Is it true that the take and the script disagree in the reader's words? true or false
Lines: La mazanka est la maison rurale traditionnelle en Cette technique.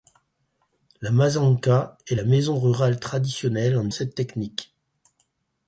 false